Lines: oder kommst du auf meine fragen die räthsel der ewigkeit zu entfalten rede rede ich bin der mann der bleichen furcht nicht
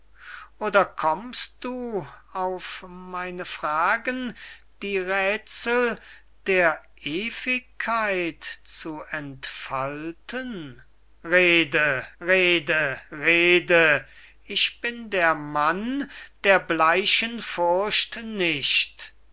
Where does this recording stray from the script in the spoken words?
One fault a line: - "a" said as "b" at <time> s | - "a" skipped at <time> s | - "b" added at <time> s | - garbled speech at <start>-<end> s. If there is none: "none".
- "rede" added at 13.1 s